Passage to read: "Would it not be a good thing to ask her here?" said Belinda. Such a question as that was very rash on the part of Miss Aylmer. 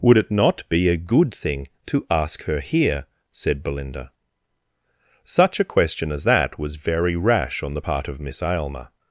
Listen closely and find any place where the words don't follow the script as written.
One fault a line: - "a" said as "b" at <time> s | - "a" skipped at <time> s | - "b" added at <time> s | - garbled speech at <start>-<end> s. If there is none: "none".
none